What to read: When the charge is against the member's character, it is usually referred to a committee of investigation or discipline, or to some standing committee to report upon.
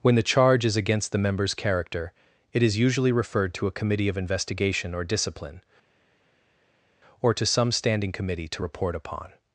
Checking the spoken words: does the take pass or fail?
pass